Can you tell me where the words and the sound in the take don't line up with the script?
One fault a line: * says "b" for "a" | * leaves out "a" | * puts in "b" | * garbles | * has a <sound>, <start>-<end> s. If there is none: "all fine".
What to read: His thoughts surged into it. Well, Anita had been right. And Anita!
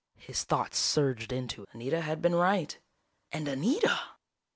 * leaves out "it Well"